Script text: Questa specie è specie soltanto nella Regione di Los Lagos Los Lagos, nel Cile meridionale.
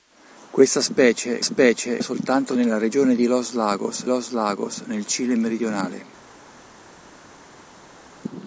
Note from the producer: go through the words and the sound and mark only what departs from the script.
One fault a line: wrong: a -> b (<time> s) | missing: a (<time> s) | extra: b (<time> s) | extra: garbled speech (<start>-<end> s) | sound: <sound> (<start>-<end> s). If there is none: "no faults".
no faults